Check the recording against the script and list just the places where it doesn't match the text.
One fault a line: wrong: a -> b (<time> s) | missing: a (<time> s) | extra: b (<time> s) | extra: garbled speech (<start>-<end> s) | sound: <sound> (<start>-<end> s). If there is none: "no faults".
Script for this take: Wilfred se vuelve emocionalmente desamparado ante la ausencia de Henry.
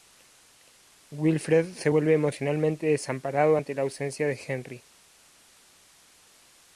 no faults